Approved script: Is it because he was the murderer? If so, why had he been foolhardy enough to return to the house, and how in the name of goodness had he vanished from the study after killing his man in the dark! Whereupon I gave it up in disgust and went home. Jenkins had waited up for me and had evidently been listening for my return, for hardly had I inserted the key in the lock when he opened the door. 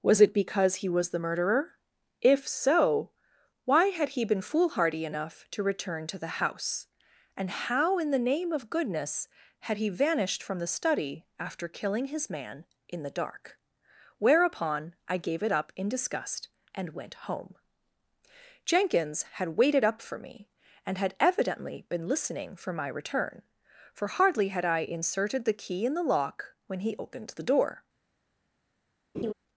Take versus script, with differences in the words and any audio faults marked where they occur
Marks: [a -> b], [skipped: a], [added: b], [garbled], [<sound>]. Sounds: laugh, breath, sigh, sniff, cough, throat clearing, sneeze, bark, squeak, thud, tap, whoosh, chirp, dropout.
[Is -> Was] it because he was the murderer? If so, why had he been foolhardy enough to return to the house, and how in the name of goodness had he vanished from the study after killing his man in the dark! Whereupon I gave it up in disgust and went home. Jenkins had waited up for me and had evidently been listening for my return, for hardly had I inserted the key in the lock when he opened the door. [laugh]